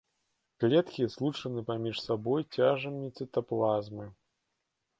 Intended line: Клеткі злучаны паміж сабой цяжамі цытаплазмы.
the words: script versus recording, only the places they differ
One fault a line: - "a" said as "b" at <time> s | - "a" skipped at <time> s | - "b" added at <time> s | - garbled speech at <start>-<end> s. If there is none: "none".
none